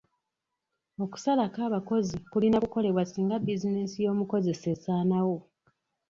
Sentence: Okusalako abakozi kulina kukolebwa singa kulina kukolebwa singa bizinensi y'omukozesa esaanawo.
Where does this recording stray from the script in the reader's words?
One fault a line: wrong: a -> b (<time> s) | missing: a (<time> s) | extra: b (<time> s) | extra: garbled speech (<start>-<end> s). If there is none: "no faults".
missing: kulina kukolebwa singa (3.4 s)